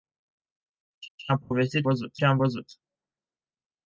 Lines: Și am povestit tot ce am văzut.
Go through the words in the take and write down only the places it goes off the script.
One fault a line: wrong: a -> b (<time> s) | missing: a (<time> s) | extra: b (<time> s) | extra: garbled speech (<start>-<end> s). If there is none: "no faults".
extra: și (1.2 s)
wrong: tot -> văzut (1.8 s)